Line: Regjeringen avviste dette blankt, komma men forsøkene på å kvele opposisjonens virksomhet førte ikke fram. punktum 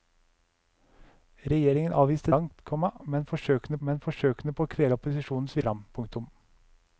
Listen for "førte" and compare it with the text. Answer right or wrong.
wrong